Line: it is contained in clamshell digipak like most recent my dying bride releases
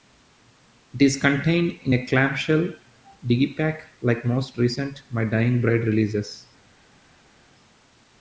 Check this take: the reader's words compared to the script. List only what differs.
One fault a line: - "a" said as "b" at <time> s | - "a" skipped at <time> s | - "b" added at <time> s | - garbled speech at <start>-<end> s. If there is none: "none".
- "a" added at 1.9 s